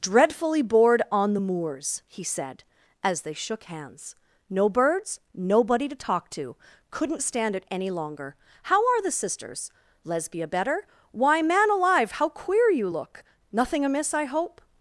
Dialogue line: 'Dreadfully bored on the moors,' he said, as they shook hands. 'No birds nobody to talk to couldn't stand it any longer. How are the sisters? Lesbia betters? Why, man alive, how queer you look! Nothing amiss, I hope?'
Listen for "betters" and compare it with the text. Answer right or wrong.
wrong